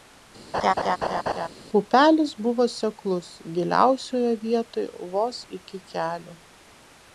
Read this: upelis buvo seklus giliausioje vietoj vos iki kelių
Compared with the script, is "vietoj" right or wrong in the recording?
right